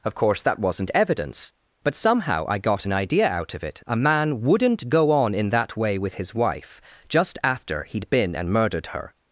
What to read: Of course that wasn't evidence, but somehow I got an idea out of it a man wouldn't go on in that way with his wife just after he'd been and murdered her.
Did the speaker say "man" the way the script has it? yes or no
yes